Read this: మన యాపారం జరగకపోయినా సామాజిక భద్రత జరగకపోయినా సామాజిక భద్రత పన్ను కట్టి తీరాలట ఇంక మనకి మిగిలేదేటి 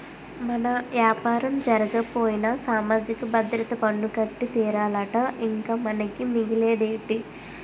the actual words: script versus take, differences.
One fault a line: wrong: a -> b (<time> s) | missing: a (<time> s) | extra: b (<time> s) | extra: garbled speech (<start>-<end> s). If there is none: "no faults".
missing: జరగకపోయినా సామాజిక భద్రత (3.7 s)